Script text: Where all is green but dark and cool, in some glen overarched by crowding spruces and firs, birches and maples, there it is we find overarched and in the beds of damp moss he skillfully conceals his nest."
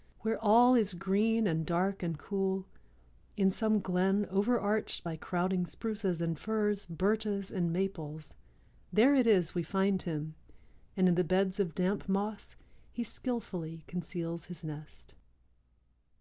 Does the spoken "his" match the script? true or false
true